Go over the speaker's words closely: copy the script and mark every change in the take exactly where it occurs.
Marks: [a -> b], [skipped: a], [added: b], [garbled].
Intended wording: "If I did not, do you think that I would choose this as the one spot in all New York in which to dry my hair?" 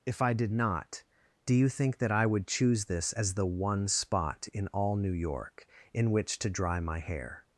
"If I did not, do you think that I would choose this as the one spot in all New York in which to dry my hair?"